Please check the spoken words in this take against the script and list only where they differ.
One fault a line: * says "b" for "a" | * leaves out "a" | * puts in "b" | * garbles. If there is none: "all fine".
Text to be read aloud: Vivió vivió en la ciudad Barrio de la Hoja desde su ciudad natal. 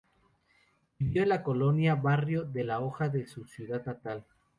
* leaves out "vivió"
* says "colonia" for "ciudad"
* says "de" for "desde"